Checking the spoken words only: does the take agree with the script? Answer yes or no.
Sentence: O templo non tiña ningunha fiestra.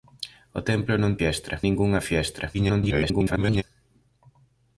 no